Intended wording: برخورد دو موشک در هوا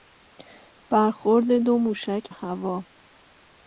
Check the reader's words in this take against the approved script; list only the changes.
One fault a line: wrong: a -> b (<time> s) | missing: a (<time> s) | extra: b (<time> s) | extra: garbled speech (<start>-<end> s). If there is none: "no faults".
missing: در (2.3 s)